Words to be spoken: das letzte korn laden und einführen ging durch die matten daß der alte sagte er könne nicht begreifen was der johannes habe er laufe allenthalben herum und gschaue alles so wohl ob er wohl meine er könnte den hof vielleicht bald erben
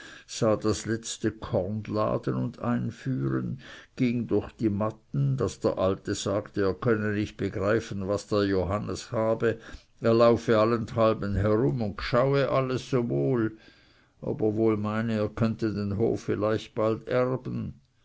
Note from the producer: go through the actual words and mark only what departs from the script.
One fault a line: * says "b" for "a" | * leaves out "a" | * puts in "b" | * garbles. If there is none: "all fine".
all fine